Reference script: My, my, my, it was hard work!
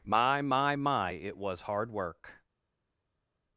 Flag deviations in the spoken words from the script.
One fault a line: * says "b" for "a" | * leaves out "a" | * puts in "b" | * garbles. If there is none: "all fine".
all fine